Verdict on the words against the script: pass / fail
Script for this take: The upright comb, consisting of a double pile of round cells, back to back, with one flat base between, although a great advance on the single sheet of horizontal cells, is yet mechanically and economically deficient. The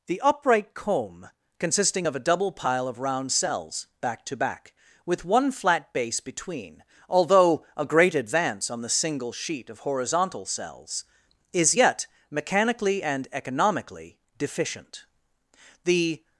pass